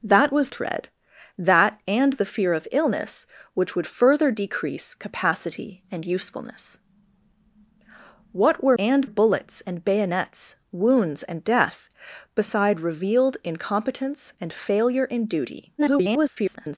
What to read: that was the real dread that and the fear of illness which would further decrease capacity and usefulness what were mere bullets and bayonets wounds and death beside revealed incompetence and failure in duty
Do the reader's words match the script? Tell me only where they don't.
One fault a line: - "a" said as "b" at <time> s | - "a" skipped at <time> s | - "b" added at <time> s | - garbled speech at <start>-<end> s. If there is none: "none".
- "the real" skipped at 0.5 s
- "mere" said as "and" at 8.8 s
- garbled speech at 15.8-16.8 s